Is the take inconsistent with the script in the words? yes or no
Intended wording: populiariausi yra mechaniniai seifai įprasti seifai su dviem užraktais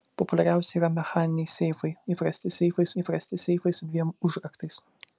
yes